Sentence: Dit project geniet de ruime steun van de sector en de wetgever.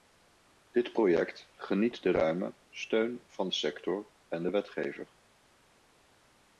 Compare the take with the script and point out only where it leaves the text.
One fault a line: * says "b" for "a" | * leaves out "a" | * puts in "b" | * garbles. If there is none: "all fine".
all fine